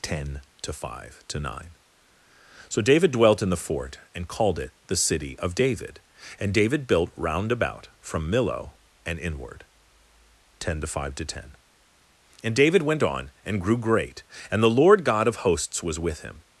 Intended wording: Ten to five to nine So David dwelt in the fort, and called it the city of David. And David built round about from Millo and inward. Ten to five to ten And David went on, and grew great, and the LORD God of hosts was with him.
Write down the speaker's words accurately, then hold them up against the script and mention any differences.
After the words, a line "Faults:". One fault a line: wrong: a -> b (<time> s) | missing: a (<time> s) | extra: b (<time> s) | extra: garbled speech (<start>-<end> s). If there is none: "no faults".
Ten to five to nine So David dwelt in the fort, and called it the city of David. And David built round about from Millo and inward. Ten to five to ten And David went on, and grew great, and the LORD God of hosts was with him.
Faults:
no faults